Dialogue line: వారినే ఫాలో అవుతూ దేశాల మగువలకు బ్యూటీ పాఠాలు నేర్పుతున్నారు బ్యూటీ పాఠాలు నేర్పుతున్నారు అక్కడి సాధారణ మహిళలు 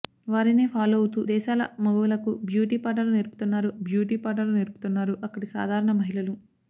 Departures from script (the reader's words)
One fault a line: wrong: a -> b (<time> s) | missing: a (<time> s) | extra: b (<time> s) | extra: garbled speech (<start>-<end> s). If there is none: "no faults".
no faults